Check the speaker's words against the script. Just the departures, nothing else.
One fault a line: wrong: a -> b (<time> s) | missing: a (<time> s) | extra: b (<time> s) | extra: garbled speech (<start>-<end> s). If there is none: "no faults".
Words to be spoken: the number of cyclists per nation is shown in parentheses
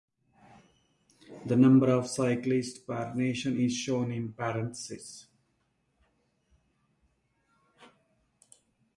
no faults